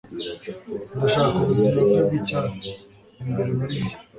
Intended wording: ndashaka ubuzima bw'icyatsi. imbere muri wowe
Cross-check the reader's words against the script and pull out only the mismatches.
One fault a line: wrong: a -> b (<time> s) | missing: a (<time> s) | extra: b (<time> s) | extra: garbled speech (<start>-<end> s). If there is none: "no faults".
extra: bwe (1.9 s)
wrong: wowe -> njye (3.8 s)